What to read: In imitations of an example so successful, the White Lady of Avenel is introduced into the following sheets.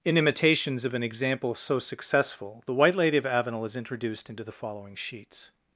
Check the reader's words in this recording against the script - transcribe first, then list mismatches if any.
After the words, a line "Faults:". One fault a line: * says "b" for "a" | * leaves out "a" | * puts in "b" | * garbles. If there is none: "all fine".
In imitations of an example so successful, the White Lady of Avenel is introduced into the following sheets.
Faults:
all fine